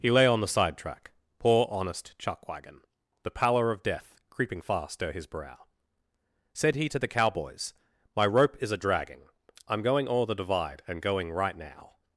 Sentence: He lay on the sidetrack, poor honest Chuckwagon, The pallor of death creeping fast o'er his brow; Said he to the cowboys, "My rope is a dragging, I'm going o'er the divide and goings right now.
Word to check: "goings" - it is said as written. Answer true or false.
false